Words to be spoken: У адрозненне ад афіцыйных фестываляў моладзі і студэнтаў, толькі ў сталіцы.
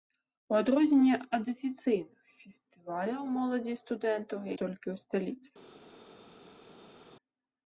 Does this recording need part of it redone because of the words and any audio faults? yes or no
no